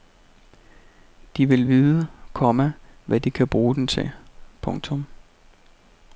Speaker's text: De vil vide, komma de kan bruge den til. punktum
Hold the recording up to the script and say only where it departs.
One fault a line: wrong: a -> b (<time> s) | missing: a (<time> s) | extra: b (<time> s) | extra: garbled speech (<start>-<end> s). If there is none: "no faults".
extra: hvad (3.1 s)